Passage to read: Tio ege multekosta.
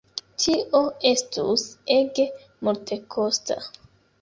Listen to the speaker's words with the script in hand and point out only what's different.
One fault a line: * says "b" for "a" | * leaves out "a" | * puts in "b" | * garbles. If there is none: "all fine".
* puts in "estus"